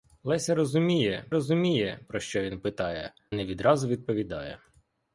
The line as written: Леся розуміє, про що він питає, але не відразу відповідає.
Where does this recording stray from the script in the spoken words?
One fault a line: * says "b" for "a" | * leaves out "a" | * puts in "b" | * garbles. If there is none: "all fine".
* puts in "розуміє"
* leaves out "але"